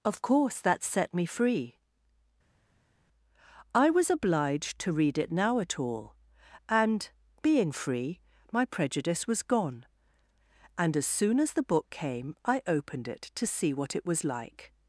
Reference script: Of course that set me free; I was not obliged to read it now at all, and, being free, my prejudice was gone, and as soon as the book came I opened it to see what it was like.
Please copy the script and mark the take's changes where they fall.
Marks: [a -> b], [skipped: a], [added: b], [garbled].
Of course that set me free; I was [skipped: not] obliged to read it now at all, and, being free, my prejudice was gone, and as soon as the book came I opened it to see what it was like.